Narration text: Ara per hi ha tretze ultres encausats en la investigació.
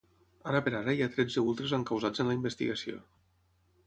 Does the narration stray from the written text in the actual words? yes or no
yes